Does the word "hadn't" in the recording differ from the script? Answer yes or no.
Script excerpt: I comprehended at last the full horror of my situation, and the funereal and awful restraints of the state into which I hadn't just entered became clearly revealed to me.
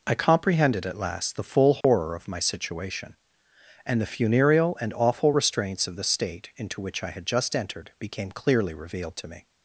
yes